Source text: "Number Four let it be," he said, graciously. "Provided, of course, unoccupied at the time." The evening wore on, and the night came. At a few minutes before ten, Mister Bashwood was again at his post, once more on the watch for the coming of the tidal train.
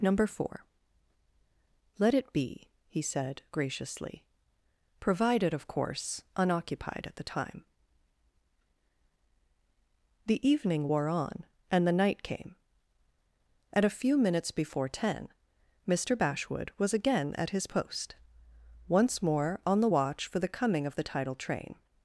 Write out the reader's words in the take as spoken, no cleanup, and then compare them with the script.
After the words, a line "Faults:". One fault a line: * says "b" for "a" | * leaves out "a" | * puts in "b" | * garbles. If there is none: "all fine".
"Number Four let it be," he said, graciously. "Provided, of course, unoccupied at the time." The evening wore on, and the night came. At a few minutes before ten, Mister Bashwood was again at his post, once more on the watch for the coming of the tidal train.
Faults:
all fine